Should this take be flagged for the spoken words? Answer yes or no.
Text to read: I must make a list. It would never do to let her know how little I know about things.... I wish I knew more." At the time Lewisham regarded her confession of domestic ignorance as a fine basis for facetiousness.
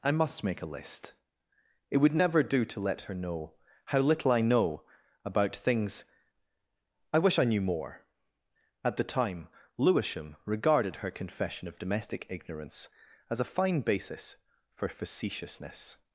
no